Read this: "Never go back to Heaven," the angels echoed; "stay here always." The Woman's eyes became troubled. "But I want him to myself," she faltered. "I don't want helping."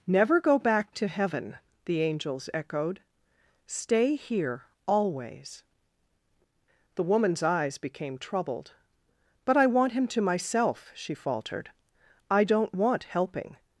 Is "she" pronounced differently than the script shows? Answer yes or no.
no